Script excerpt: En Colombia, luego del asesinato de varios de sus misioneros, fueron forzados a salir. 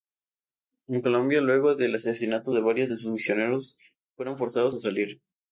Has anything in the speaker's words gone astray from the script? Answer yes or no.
no